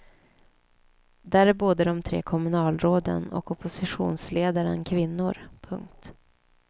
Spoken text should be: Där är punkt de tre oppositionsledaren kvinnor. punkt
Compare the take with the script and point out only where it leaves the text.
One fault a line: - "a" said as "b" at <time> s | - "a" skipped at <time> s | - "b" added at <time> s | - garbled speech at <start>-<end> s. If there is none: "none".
- "punkt" said as "både" at 1.5 s
- "kommunalråden och" added at 2.2 s